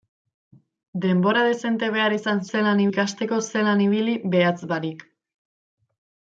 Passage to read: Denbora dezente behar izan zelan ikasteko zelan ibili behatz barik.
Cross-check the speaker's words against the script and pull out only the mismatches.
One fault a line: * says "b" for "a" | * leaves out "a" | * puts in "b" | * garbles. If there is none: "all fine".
all fine